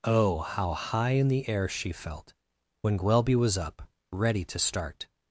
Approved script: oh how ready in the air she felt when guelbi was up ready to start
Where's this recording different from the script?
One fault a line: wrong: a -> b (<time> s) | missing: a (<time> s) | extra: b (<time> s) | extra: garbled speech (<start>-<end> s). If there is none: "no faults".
wrong: ready -> high (0.7 s)